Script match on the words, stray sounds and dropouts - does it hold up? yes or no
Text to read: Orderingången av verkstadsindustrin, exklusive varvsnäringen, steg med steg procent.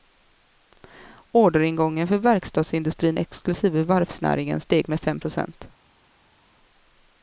no